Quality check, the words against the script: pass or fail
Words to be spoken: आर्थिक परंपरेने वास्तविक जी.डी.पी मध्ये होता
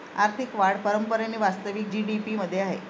fail